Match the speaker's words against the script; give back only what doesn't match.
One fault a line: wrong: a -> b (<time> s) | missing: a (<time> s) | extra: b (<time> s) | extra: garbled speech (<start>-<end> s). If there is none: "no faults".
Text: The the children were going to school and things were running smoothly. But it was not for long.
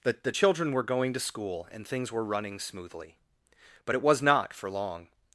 no faults